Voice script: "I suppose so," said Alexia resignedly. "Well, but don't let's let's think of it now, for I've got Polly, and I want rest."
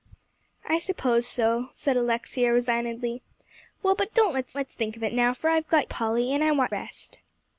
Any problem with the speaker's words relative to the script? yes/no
no